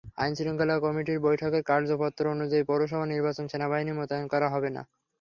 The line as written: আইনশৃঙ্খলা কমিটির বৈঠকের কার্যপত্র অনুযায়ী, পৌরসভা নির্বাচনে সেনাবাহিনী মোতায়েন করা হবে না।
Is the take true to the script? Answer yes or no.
yes